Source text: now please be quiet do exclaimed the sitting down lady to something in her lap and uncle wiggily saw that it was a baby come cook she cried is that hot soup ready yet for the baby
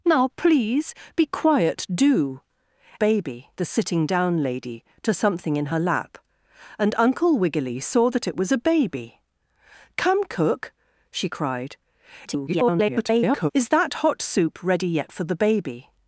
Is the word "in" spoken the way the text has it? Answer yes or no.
yes